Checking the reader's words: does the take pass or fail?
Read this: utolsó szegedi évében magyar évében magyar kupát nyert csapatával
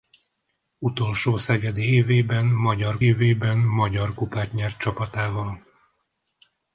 pass